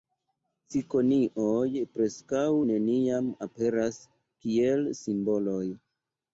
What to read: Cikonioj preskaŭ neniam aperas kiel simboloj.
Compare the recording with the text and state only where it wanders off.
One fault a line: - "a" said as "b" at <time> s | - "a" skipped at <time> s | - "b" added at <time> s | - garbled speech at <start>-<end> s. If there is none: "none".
none